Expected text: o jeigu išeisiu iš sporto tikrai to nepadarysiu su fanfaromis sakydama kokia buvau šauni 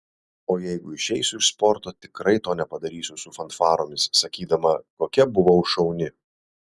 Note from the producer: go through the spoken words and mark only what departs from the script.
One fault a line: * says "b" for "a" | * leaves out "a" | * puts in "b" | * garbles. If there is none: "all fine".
all fine